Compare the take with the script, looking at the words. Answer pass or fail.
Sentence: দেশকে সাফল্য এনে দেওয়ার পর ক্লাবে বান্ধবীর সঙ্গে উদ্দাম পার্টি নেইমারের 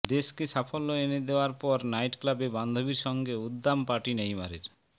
fail